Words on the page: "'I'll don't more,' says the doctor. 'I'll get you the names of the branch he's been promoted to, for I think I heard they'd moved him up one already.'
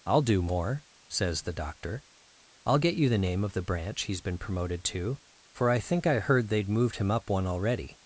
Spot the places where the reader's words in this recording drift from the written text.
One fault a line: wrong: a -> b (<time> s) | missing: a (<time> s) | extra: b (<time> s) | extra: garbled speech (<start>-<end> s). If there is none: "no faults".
wrong: don't -> do (0.2 s)
wrong: names -> name (3.2 s)